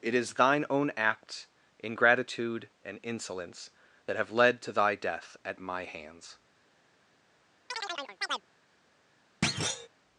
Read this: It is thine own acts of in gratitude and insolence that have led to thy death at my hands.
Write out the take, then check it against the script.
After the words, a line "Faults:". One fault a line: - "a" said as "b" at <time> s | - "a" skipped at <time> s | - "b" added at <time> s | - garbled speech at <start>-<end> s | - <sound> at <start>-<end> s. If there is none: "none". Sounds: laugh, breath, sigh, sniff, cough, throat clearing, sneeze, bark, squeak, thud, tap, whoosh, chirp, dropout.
It is thine own acts ingratitude and insolence that have led to thy death at my hands.
Faults:
- "of in gratitude" said as "ingratitude" at 1.8 s
- chirp at 7.7-8.5 s
- thud at 9.4-9.9 s